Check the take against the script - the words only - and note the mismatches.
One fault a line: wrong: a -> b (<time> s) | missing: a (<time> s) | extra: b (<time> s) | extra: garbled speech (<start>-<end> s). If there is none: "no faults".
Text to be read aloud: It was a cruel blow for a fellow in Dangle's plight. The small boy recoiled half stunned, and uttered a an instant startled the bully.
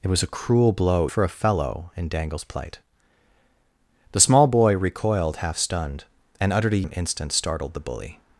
no faults